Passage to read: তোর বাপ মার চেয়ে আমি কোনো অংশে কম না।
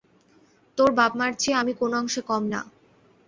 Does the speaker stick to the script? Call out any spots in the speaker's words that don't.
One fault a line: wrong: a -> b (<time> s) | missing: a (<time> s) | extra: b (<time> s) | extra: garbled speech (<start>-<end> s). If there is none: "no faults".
no faults